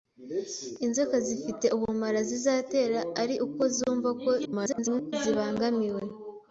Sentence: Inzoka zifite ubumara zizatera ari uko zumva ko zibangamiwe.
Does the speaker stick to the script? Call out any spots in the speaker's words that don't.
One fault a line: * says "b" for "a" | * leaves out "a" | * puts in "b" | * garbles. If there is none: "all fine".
* garbles